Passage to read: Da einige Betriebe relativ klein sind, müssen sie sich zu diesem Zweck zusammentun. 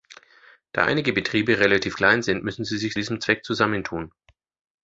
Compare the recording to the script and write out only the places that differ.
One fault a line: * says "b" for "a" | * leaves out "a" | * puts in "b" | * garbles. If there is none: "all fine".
* leaves out "zu"